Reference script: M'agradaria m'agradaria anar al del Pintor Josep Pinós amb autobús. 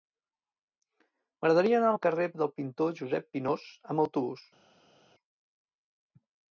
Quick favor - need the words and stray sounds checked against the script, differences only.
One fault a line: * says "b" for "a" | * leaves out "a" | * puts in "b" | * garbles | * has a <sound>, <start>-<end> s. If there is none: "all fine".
* leaves out "m'agradaria"
* puts in "carrer"